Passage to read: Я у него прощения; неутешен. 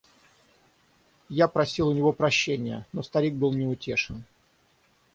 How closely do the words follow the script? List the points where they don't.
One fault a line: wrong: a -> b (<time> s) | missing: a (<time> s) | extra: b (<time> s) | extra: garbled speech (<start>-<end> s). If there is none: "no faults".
extra: просил (1.5 s)
extra: но старик был (2.9 s)